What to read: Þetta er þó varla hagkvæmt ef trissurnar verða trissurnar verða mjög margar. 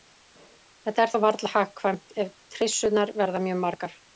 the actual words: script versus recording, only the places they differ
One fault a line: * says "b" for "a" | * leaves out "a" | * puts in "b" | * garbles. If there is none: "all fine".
* leaves out "trissurnar verða"